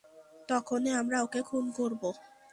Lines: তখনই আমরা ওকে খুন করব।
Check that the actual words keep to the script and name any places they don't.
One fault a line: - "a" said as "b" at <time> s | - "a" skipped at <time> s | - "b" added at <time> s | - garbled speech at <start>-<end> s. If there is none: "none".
none